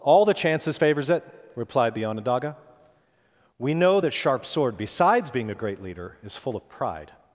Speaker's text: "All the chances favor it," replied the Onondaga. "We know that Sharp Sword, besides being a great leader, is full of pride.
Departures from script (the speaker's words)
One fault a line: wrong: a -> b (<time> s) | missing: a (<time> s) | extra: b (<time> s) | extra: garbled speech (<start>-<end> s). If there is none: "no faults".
wrong: favor -> favors (0.8 s)